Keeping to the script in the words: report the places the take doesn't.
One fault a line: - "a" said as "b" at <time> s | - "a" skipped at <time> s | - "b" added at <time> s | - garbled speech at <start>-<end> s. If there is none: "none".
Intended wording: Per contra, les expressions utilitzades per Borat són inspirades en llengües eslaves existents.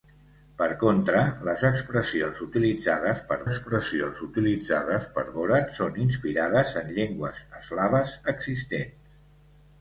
- "expressions utilitzades per" added at 3.5 s